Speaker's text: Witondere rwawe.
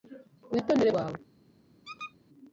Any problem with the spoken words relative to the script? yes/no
no